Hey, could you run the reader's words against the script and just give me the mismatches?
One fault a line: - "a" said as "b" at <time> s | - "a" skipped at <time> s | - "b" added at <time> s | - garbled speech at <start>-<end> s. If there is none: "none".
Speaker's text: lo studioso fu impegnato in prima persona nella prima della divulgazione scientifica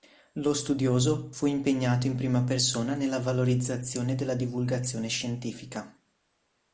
- "prima" said as "valorizzazione" at 3.2 s